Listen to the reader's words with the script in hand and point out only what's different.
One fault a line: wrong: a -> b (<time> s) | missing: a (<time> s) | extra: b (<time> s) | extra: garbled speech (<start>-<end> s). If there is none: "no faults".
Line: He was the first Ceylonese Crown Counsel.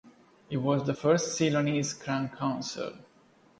no faults